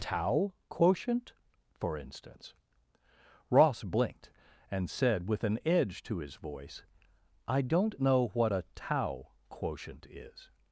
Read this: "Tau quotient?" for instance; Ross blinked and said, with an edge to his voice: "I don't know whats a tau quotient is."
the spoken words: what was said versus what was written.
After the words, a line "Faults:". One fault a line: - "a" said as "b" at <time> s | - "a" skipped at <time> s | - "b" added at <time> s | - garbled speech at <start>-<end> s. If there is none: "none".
"Tau quotient?" for instance; Ross blinked and said, with an edge to his voice: "I don't know what a tau quotient is."
Faults:
- "whats" said as "what" at 8.3 s